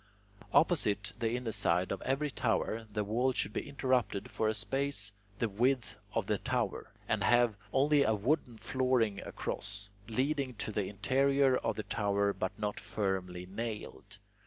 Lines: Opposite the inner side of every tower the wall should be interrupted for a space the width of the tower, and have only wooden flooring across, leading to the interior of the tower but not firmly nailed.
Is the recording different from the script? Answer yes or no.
yes